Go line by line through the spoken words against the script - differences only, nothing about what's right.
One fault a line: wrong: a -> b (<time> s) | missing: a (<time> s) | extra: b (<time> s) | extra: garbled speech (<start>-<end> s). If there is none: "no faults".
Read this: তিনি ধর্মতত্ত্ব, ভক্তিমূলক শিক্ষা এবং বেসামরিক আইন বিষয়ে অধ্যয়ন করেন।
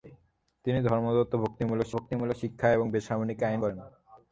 extra: ভক্তিমূলক (2.0 s)
missing: বিষয়ে অধ্যয়ন (3.6 s)